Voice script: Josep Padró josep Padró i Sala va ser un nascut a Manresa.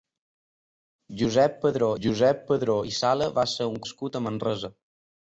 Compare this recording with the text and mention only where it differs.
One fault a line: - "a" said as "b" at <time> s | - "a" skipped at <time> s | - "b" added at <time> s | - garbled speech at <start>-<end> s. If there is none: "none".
none